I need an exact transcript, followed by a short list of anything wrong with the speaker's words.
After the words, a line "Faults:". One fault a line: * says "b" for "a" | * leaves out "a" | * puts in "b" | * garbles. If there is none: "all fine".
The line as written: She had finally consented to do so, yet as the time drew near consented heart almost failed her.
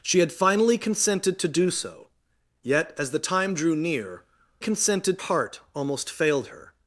She had finally consented to do so, yet as the time drew near consented heart almost failed her.
Faults:
all fine